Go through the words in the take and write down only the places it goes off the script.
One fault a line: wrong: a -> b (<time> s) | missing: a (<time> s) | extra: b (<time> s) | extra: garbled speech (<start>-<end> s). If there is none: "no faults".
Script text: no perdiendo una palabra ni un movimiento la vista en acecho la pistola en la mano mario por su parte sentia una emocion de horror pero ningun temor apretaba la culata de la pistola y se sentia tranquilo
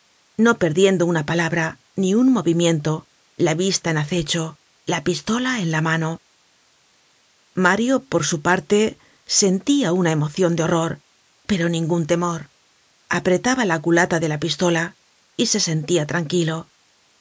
no faults